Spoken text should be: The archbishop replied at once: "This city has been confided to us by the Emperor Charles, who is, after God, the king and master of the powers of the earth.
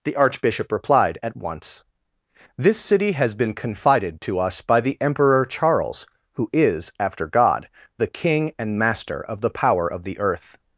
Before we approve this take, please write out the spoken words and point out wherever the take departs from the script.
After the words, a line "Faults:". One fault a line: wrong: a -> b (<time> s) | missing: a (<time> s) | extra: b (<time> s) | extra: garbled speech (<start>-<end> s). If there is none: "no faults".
The archbishop replied at once: "This city has been confided to us by the Emperor Charles, who is, after God, the king and master of the power of the earth.
Faults:
wrong: powers -> power (9.5 s)